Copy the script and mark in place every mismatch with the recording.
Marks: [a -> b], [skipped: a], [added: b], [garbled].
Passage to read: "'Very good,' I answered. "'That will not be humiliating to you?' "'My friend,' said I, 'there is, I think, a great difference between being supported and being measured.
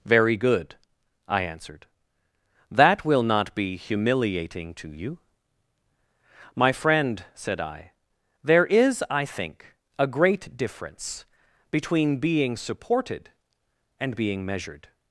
"'Very good,' I answered. "'That will not be humiliating to you?' "'My friend,' said I, 'there is, I think, a great difference between being supported and being measured.